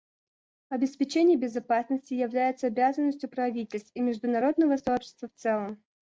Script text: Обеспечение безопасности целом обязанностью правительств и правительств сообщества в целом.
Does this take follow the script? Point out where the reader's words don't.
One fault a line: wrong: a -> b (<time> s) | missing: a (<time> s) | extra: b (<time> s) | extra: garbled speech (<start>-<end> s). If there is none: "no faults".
wrong: целом -> является (2.1 s)
wrong: правительств -> международного (4.0 s)